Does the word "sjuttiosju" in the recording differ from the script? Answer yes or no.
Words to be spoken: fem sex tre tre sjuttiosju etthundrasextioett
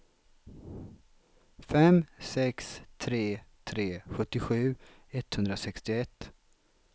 no